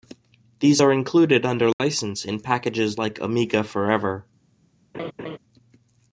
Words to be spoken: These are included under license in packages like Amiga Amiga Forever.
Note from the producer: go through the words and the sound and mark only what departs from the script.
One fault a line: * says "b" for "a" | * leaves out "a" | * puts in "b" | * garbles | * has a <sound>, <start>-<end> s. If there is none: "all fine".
* has a dropout, 1.7-1.8 s
* leaves out "Amiga"
* has a laugh, 4.9-5.4 s